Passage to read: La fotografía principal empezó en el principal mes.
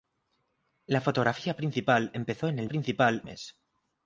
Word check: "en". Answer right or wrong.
right